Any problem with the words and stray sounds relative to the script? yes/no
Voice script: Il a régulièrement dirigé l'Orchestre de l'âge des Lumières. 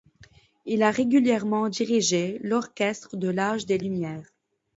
no